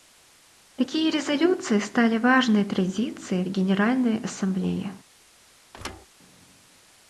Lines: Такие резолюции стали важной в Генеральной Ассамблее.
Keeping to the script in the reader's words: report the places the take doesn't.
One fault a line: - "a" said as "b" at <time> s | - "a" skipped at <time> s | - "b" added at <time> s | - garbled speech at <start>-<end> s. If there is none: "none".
- "традицией" added at 2.6 s